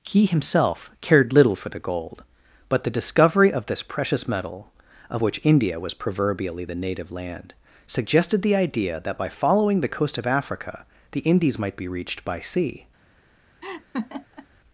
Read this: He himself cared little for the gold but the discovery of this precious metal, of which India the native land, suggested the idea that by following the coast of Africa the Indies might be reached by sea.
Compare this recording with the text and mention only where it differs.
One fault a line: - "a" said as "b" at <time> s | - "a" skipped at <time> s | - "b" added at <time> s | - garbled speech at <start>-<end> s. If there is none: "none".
- "was proverbially" added at 5.8 s